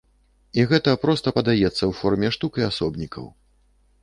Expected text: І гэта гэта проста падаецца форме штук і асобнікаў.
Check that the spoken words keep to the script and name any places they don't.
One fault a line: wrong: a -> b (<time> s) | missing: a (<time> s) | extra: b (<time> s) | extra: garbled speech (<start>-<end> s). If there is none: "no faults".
missing: гэта (0.9 s)
extra: ў (1.7 s)